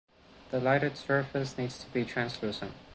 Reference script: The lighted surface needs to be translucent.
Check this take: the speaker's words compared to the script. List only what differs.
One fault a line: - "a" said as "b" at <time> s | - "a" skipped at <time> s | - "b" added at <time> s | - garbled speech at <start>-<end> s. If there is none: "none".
none